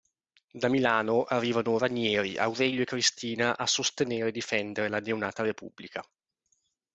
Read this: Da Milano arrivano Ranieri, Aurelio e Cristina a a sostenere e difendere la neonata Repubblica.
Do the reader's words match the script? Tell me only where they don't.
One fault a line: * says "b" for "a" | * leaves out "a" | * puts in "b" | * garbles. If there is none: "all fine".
* leaves out "a"